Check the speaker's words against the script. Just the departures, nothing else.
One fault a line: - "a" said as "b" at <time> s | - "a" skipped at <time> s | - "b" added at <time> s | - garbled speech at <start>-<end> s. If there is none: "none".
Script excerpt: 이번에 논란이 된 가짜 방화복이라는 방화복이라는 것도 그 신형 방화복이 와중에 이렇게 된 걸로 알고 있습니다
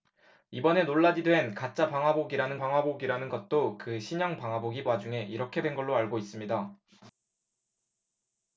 none